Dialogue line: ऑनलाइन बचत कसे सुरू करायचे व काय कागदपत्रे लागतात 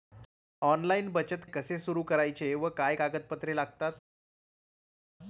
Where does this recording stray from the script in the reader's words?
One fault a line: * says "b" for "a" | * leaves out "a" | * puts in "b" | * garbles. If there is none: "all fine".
all fine